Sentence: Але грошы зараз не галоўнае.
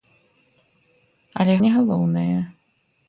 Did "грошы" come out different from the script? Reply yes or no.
yes